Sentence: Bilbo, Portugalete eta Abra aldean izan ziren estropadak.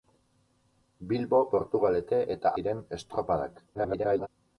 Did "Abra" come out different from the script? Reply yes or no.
yes